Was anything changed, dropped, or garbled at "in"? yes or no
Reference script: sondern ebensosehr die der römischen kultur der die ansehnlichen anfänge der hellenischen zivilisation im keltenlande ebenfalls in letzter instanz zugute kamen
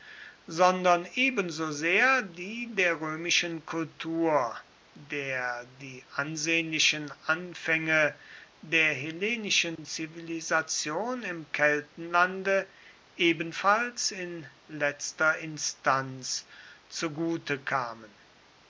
no